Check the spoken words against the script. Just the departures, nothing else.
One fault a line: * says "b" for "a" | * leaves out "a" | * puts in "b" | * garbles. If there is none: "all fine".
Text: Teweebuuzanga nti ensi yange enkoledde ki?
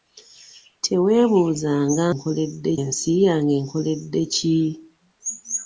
* says "enkoledde" for "nti"